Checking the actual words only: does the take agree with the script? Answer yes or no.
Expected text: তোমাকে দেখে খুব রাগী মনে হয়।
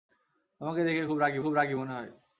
no